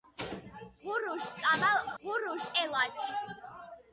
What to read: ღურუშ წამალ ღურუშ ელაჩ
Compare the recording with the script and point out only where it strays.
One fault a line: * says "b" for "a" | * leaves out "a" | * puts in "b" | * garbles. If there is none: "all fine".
all fine